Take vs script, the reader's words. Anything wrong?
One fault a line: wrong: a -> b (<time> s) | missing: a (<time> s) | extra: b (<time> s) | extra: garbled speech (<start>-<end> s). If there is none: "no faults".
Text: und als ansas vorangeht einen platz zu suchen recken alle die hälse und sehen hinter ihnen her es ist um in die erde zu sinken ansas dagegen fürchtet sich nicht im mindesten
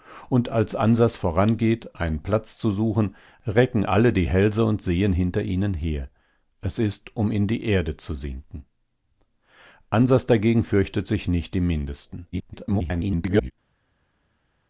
extra: garbled speech (12.3-13.5 s)